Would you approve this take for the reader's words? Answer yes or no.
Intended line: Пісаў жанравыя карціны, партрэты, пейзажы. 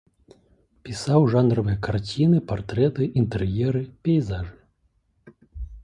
no